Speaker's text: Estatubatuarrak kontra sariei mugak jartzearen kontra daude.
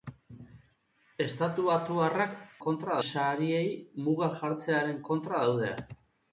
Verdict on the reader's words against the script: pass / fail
pass